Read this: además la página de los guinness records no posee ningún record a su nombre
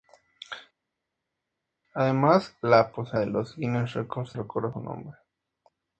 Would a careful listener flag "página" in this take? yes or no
yes